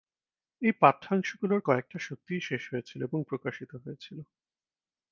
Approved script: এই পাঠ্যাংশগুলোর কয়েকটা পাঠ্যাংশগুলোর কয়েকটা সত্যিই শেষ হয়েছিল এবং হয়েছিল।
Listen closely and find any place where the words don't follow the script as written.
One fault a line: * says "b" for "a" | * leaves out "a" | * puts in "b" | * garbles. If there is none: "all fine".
* leaves out "পাঠ্যাংশগুলোর কয়েকটা"
* puts in "প্রকাশিত"